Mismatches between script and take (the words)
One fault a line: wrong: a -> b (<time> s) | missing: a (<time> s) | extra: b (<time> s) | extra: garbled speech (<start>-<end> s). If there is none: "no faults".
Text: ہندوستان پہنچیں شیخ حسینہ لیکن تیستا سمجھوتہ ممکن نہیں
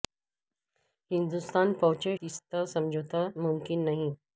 missing: شیخ حسینہ لیکن (2.1 s)